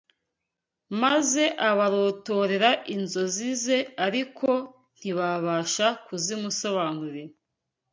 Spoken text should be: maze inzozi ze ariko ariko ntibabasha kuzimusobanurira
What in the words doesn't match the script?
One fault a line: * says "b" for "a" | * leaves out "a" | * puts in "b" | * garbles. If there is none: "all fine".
* puts in "abarotorera"
* leaves out "ariko"